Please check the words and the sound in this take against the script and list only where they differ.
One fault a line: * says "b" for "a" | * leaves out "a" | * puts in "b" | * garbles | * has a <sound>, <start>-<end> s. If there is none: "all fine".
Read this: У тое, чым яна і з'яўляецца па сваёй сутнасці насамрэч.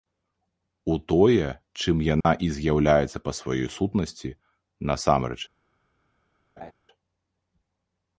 * has a dropout, 2.2-2.2 s
* has a laugh, 6.6-6.7 s